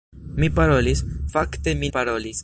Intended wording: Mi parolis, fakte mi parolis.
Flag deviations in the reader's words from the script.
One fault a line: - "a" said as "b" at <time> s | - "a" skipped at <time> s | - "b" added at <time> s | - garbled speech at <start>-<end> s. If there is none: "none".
none